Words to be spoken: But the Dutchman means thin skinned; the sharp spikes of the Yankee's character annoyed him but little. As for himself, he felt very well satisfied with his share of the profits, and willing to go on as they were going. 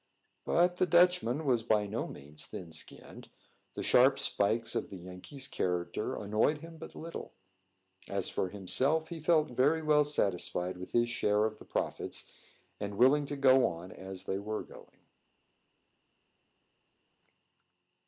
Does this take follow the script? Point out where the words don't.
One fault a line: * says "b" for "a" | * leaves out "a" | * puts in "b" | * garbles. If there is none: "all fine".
* puts in "was by no"